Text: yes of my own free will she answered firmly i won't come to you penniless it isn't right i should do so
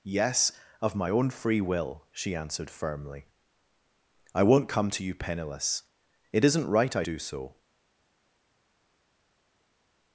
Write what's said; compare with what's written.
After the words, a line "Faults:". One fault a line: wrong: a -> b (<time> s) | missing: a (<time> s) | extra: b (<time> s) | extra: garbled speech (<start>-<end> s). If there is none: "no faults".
yes of my own free will she answered firmly i won't come to you penniless it isn't right i do so
Faults:
missing: should (7.0 s)